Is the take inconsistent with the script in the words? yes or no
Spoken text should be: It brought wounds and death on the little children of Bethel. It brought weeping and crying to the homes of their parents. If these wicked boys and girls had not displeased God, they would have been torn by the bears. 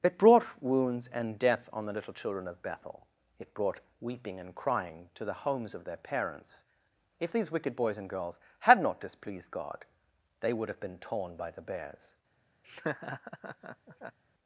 no